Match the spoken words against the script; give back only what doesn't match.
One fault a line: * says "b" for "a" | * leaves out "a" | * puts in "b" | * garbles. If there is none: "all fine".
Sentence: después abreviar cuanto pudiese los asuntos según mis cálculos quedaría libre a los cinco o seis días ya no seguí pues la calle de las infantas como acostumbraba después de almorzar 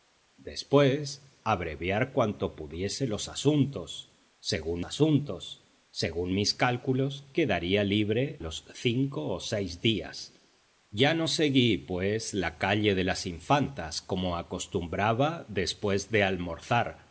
* puts in "asuntos según"
* leaves out "a"